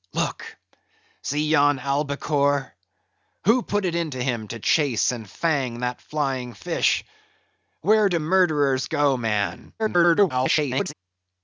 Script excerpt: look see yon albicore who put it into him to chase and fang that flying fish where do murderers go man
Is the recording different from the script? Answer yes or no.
yes